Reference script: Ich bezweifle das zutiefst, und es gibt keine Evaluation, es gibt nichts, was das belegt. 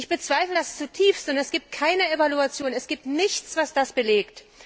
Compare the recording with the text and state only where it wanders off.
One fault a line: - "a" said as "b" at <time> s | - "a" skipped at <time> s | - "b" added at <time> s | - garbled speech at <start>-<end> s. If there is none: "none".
none